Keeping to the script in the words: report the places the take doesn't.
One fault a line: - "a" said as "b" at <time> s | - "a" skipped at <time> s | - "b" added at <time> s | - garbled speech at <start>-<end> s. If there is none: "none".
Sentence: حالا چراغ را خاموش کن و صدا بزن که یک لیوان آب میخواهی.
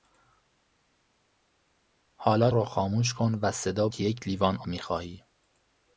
- "چراغ" skipped at 2.5 s
- "بزن" skipped at 3.9 s
- "آب" skipped at 4.6 s